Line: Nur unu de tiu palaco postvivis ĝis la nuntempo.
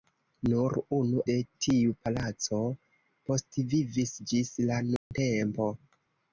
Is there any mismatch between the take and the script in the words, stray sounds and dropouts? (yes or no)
yes